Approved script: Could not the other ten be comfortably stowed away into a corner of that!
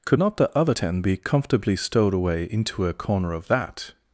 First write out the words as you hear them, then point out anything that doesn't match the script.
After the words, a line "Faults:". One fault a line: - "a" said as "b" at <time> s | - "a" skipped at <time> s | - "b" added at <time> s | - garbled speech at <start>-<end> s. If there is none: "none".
Could not the other ten be comfortably stowed away into a corner of that!
Faults:
none